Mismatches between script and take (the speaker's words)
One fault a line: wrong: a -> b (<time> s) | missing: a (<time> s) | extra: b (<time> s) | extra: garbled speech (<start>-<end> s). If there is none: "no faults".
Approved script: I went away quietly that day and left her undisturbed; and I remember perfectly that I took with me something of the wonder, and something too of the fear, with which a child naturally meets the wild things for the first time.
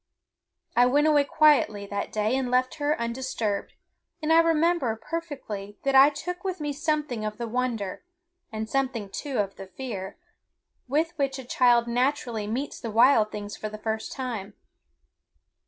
no faults